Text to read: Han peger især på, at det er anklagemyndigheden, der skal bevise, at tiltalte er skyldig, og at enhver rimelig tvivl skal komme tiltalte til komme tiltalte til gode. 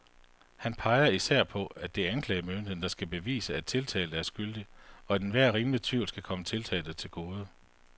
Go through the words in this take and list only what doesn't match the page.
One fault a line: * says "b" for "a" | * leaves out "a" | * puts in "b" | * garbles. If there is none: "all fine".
* leaves out "komme tiltalte til"